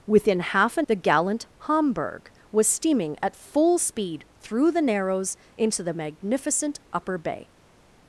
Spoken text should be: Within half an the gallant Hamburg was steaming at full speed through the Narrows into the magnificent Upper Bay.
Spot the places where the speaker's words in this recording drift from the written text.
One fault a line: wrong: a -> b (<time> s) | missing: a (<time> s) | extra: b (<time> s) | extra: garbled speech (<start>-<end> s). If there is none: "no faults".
no faults